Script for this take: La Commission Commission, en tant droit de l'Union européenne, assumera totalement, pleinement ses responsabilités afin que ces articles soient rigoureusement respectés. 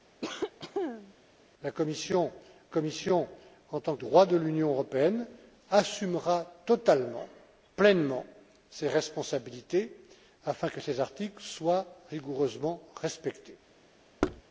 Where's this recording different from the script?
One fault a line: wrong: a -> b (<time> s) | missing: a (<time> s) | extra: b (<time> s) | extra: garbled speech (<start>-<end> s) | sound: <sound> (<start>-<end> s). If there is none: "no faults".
sound: cough (0.2-1.1 s)
sound: thud (14.2-14.4 s)